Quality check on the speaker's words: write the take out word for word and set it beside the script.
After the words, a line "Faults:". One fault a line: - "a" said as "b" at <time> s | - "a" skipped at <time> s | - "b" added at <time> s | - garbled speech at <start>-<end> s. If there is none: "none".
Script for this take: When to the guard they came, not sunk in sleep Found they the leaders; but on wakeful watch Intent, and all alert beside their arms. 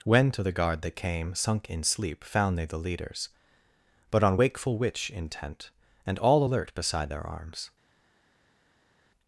When to the guard they came, sunk in sleep Found they the leaders; but on wakeful witch Intent, and all alert beside their arms.
Faults:
- "not" skipped at 1.4 s
- "watch" said as "witch" at 4.8 s